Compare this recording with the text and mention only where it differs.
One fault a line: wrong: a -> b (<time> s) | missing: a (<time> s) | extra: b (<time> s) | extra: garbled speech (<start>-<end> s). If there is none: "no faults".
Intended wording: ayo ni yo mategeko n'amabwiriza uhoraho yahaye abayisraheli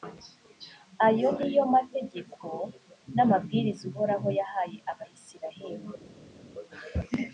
no faults